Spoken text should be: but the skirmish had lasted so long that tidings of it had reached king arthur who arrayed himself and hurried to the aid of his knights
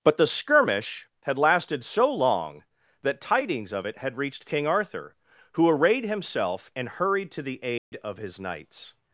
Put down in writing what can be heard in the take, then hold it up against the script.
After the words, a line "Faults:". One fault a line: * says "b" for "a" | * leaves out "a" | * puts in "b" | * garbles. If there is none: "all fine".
but the skirmish had lasted so long that tidings of it had reached king arthur who arrayed himself and hurried to the aid of his knights
Faults:
all fine